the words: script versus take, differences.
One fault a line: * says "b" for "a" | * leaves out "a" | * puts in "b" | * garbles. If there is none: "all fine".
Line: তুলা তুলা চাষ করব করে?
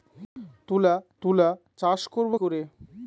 all fine